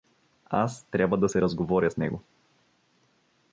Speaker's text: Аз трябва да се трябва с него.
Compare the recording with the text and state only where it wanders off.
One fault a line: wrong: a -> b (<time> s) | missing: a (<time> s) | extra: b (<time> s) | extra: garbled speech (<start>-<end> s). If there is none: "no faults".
wrong: трябва -> разговоря (1.4 s)